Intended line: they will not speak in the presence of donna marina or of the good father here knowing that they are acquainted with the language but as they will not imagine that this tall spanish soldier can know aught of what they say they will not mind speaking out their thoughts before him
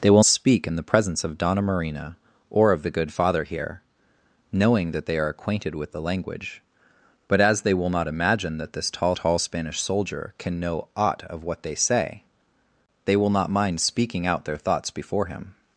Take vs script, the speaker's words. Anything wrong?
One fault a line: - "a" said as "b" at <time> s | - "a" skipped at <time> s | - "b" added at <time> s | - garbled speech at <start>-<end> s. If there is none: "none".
- "not" skipped at 0.2 s
- "tall" added at 9.1 s